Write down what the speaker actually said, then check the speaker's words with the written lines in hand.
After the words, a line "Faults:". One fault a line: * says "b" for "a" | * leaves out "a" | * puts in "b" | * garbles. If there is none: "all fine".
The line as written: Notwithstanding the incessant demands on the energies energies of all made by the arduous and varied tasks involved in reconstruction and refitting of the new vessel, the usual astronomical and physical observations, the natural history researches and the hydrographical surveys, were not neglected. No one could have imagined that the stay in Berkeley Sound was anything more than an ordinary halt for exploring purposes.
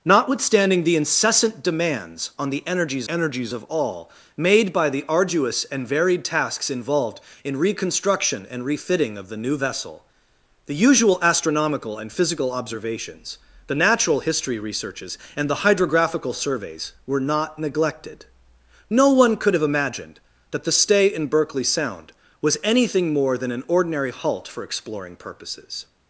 Notwithstanding the incessant demands on the energies energies of all made by the arduous and varied tasks involved in reconstruction and refitting of the new vessel, the usual astronomical and physical observations, the natural history researches and the hydrographical surveys, were not neglected. No one could have imagined that the stay in Berkeley Sound was anything more than an ordinary halt for exploring purposes.
Faults:
all fine